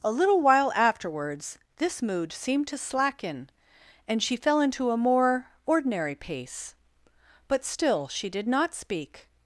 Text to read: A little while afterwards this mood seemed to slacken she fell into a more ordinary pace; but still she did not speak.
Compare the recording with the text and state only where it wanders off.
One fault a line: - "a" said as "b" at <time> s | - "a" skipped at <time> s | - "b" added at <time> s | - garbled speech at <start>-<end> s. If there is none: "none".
- "and" added at 4.1 s